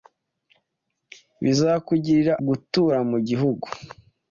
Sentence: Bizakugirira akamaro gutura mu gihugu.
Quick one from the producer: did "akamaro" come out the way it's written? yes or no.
no